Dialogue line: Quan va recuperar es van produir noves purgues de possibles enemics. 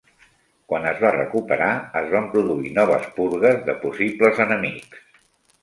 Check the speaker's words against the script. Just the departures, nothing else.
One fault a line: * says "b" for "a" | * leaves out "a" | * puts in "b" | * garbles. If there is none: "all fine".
* puts in "es"